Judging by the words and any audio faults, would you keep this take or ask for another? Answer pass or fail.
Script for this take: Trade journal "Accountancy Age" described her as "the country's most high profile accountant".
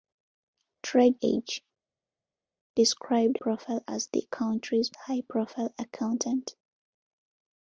fail